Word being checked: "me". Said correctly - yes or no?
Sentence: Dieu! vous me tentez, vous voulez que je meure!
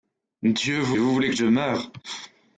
no